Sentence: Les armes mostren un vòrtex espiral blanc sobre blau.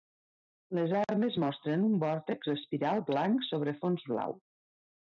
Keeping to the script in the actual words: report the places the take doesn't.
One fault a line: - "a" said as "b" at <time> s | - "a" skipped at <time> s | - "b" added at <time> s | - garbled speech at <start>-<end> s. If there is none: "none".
- "fons" added at 3.8 s